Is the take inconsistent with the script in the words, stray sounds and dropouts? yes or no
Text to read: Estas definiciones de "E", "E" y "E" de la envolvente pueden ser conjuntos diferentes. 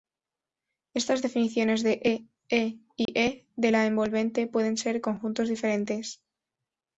yes